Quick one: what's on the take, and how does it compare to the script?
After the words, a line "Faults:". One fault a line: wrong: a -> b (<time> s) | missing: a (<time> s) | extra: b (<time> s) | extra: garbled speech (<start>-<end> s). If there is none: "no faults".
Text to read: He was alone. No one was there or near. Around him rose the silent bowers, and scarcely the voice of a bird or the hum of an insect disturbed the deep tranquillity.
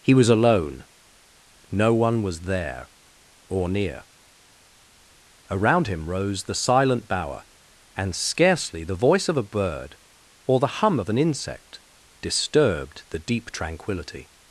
He was alone. No one was there or near. Around him rose the silent bower, and scarcely the voice of a bird or the hum of an insect disturbed the deep tranquillity.
Faults:
wrong: bowers -> bower (7.1 s)